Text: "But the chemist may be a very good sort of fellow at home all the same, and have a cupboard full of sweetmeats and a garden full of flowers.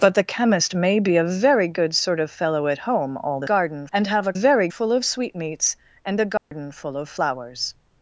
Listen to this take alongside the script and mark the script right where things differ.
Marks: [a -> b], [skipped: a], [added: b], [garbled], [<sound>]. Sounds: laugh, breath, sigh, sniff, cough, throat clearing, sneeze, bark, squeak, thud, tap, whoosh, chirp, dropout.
"But the chemist may be a very good sort of fellow at home all the [same, -> garden] and have a [cupboard -> very] full of sweetmeats and a garden [dropout] full of flowers.